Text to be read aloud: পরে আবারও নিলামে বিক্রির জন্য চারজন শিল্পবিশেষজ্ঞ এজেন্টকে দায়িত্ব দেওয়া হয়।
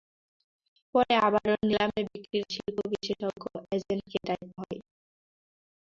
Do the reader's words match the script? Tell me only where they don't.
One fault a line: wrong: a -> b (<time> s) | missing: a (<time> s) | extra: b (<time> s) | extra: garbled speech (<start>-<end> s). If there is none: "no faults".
missing: জন্য চারজন (2.5 s)
missing: দেওয়া (4.6 s)